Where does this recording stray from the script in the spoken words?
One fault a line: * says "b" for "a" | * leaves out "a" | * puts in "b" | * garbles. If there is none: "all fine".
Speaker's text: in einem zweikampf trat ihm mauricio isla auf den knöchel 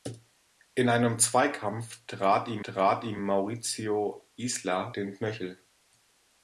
* puts in "trat ihm"
* leaves out "auf"